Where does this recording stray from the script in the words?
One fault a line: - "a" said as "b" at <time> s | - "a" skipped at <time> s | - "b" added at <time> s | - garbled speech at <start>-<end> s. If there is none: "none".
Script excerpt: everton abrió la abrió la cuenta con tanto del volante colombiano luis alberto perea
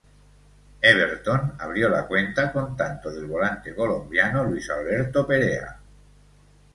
- "abrió la" skipped at 2.1 s